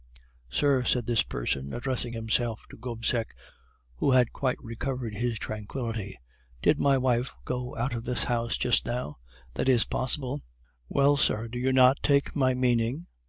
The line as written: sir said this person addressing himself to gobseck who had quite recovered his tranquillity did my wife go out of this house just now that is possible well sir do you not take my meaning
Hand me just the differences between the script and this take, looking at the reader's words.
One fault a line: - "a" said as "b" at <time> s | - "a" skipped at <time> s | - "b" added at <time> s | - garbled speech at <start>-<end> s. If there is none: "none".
none